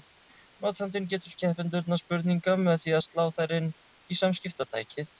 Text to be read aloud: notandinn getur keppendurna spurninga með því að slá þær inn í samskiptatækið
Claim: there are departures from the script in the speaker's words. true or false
false